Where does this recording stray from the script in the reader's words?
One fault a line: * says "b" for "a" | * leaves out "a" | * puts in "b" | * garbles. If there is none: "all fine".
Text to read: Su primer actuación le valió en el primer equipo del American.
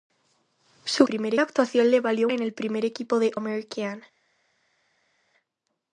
all fine